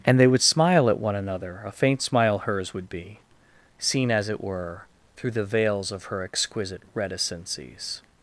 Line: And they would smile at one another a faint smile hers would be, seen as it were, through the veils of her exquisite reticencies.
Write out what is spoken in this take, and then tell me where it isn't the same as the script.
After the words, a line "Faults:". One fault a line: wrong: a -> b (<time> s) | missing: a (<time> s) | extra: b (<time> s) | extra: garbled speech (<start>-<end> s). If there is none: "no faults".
And they would smile at one another a faint smile hers would be, seen as it were, through the veils of her exquisite reticencies.
Faults:
no faults